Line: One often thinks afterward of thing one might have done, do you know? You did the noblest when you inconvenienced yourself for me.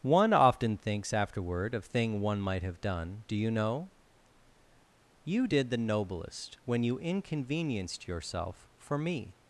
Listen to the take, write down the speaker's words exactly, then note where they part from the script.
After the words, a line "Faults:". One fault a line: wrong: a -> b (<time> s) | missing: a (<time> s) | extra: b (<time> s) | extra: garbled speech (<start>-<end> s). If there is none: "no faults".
One often thinks afterward of thing one might have done, do you know? You did the noblest when you inconvenienced yourself for me.
Faults:
no faults